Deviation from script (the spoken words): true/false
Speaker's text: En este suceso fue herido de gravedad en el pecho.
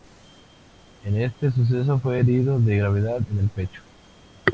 false